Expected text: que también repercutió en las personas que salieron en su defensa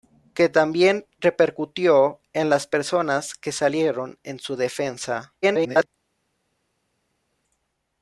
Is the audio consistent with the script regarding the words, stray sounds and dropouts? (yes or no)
no